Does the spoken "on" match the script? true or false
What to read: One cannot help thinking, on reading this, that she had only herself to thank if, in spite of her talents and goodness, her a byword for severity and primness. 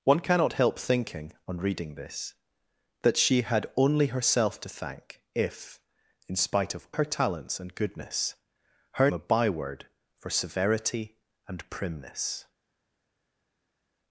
true